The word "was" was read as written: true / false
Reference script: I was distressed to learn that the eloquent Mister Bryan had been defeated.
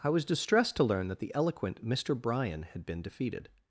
true